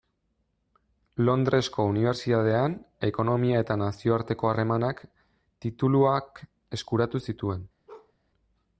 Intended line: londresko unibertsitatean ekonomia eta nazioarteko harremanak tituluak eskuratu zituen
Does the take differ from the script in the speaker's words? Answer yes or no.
no